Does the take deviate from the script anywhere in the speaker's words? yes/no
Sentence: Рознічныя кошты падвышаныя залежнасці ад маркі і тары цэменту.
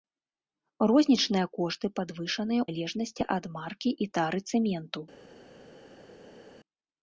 no